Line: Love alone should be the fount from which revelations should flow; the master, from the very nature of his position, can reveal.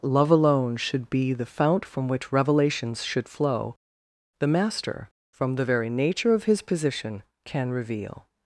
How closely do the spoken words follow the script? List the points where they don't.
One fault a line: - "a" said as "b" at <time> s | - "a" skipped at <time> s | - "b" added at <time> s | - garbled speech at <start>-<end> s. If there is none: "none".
none